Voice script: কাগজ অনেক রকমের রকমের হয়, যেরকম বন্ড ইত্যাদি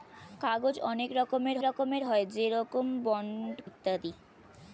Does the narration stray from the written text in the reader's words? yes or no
no